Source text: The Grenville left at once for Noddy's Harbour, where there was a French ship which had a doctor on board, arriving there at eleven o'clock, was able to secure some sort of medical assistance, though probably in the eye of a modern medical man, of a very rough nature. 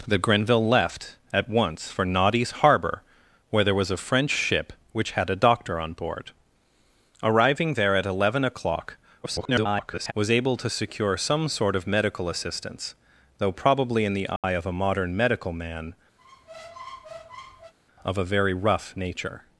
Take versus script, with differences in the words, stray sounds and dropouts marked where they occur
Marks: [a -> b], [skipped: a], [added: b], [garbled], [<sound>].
The Grenville left at once for Noddy's Harbour, where there was a French ship which had a doctor on board, arriving there at eleven o'clock, [garbled] was able to secure some sort of medical assistance, though probably in the eye [dropout] of a modern medical man, [squeak] of a very rough nature.